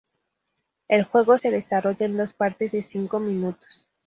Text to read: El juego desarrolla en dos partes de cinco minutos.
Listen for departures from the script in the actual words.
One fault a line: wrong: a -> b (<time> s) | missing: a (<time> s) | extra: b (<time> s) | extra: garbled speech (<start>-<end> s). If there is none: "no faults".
extra: se (1.3 s)